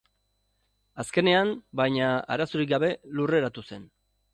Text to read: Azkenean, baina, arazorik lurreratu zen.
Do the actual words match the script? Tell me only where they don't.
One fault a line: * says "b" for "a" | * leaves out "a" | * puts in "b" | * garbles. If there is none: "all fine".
* puts in "gabe"